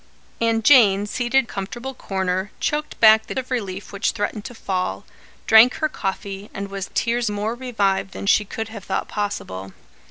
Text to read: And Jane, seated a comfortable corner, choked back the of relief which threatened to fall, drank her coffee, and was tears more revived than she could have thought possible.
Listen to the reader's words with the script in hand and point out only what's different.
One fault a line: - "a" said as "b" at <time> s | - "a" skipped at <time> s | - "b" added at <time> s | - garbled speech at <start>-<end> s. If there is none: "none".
none